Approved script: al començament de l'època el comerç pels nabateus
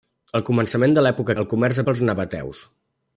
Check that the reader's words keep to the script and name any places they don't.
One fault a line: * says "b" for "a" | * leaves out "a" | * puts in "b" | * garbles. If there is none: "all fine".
all fine